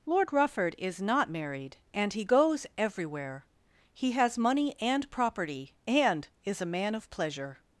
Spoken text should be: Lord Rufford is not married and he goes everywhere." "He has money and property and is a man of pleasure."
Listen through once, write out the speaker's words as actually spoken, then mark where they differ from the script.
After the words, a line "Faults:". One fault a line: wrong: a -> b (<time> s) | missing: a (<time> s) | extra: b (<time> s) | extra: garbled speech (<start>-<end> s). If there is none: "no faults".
Lord Rufford is not married and he goes everywhere." "He has money and property and is a man of pleasure."
Faults:
no faults